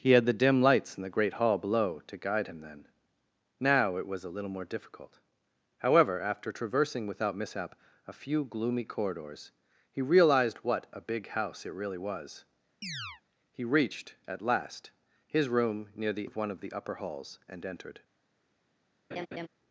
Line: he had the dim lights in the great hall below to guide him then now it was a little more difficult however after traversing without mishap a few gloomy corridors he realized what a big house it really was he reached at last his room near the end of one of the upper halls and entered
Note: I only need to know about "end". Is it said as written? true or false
false